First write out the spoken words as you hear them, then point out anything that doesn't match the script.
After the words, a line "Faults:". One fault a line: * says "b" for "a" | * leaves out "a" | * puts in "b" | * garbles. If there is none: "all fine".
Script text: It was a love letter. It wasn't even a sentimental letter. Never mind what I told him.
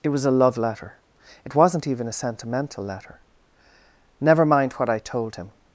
It was a love letter. It wasn't even a sentimental letter. Never mind what I told him.
Faults:
all fine